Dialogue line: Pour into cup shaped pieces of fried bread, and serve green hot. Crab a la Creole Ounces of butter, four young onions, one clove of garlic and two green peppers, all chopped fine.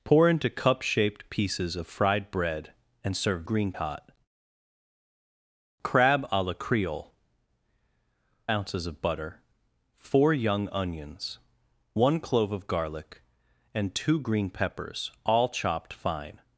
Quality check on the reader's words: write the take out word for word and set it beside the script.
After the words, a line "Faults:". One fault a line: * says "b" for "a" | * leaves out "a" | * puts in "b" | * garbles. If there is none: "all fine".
Pour into cup shaped pieces of fried bread, and serve green hot. Crab a la Creole Ounces of butter, four young onions, one clove of garlic and two green peppers, all chopped fine.
Faults:
all fine